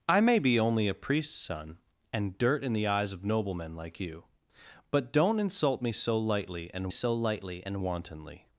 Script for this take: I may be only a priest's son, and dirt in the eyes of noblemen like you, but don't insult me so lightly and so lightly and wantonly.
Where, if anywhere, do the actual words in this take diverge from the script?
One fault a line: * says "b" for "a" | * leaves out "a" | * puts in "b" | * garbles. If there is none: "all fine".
all fine